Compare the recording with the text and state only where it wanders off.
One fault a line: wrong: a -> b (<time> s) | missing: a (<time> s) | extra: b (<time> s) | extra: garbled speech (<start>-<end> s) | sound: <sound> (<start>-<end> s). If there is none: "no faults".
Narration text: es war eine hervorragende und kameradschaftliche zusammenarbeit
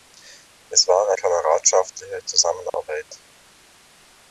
missing: eine hervorragende und (1.1 s)
sound: dropout (2.7-2.7 s)